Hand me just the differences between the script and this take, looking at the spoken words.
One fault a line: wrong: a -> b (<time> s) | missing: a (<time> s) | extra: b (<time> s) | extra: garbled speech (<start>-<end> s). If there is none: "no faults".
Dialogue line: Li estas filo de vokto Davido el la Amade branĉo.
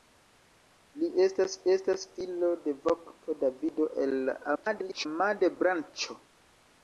extra: estas (1.7 s)
extra: garbled speech (4.6-5.1 s)